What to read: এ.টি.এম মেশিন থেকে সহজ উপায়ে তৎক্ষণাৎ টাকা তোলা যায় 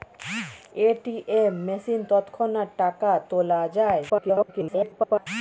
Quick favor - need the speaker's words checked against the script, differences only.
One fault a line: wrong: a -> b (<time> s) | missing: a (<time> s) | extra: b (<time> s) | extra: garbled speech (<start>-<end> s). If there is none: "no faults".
missing: থেকে সহজ উপায়ে (2.0 s)
extra: garbled speech (4.1-5.3 s)